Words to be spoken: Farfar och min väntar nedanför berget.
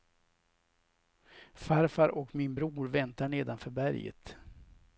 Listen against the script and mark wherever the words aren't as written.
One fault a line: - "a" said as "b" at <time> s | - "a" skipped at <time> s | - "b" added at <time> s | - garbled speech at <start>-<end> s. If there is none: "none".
- "bror" added at 2.5 s